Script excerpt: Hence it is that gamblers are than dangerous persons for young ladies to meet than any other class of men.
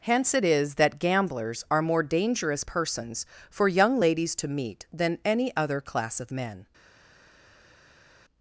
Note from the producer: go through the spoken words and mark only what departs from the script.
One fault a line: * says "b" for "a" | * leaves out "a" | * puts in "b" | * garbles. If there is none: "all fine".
* says "more" for "than"